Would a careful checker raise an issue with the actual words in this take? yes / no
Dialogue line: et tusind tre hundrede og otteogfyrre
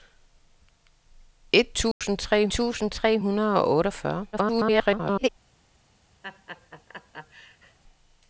yes